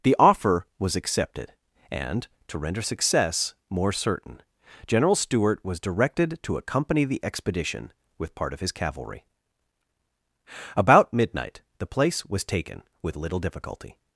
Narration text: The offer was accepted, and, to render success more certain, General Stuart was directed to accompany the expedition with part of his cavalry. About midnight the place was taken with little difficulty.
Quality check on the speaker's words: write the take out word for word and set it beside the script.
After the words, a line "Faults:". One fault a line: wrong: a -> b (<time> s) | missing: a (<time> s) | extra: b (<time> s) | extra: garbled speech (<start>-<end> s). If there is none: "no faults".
The offer was accepted, and, to render success more certain, General Stuart was directed to accompany the expedition with part of his cavalry. About midnight the place was taken with little difficulty.
Faults:
no faults